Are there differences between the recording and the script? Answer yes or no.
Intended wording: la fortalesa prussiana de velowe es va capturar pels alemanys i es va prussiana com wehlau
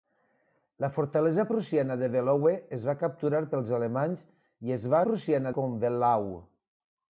no